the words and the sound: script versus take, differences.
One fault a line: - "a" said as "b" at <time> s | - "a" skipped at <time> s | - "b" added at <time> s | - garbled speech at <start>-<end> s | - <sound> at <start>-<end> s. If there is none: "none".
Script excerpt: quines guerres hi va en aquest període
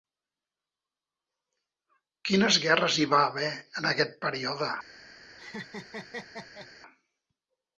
- "haver" added at 3.3 s
- laugh at 5.4-6.7 s